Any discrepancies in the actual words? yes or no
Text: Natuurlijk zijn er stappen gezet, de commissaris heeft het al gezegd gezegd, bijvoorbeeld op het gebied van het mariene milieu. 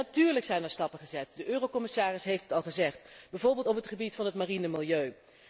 yes